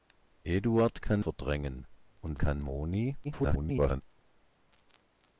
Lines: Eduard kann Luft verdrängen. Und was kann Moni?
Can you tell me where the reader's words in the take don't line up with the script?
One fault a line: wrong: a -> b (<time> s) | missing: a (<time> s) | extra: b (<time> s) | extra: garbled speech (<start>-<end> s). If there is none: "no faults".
missing: Luft (1.2 s)
missing: was (2.4 s)
extra: garbled speech (3.2-4.0 s)